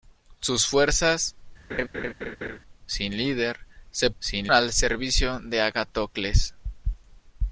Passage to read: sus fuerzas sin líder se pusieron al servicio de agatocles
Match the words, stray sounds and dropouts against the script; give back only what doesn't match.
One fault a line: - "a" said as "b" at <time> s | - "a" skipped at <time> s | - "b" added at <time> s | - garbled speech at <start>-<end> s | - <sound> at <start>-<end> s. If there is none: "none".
- laugh at 1.7-2.6 s
- "pusieron" said as "sin" at 4.2 s